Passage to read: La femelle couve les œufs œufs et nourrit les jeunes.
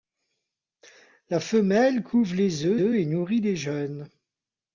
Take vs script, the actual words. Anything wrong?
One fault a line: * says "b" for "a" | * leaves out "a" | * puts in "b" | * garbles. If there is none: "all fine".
all fine